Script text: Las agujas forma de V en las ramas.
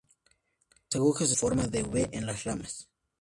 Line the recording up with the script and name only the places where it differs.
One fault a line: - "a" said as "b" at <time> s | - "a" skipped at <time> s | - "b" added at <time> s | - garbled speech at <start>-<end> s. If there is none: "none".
none